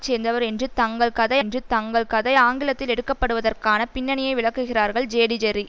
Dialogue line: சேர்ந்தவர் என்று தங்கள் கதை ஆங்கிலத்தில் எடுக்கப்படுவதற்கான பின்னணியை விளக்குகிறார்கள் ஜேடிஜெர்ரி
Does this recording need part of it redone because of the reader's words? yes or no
yes